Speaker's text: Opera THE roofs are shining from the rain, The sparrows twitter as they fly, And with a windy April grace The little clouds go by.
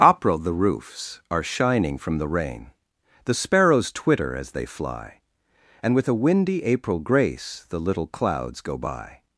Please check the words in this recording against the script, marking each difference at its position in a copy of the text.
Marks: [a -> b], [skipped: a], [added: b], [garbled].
Opera THE roofs are shining from the rain, The sparrows twitter as they fly, And with a windy April grace The little clouds go by.